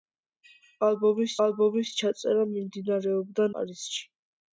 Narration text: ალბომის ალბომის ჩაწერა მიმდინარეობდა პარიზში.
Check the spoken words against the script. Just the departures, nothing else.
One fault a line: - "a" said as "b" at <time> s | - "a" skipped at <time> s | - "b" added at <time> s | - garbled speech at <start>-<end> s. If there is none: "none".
none